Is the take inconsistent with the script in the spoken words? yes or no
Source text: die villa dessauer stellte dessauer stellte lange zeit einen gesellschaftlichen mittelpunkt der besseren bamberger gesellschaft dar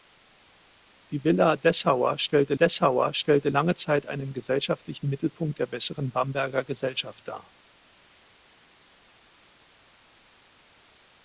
no